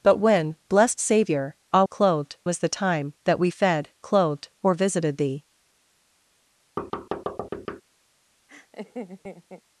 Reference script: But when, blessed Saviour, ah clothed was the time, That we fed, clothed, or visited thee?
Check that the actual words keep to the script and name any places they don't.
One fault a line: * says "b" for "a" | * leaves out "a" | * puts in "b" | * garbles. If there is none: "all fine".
all fine